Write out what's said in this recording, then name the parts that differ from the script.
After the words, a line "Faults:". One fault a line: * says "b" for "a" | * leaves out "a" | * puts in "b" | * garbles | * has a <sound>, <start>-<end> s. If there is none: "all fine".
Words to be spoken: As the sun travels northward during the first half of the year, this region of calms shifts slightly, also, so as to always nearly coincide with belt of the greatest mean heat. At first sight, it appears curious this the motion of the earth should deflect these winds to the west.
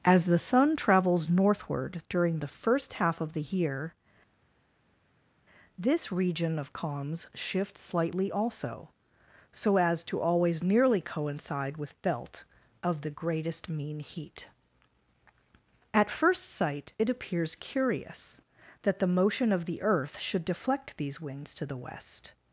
As the sun travels northward during the first half of the year, this region of calms shifts slightly, also, so as to always nearly coincide with belt of the greatest mean heat. At first sight, it appears curious that the motion of the earth should deflect these winds to the west.
Faults:
* says "that" for "this"